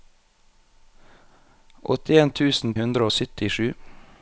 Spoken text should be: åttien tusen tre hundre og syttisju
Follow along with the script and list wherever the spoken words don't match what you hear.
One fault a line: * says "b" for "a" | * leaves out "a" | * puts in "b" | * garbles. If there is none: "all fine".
* leaves out "tre"